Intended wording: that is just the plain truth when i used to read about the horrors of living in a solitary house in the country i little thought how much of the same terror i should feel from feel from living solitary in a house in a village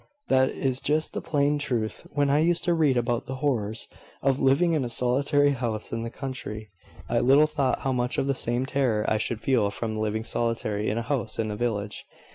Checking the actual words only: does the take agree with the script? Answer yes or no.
no